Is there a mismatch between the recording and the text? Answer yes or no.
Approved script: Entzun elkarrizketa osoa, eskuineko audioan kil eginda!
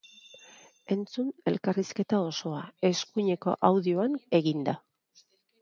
yes